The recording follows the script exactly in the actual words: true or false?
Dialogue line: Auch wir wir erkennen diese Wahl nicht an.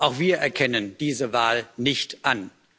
false